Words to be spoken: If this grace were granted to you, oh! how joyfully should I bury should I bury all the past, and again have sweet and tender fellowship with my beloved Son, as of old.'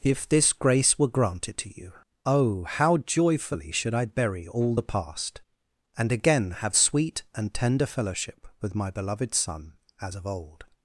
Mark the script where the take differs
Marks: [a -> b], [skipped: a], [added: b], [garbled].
If this grace were granted to you, oh! how joyfully should I bury [skipped: should I bury] all the past, and again have sweet and tender fellowship with my beloved Son, as of old.'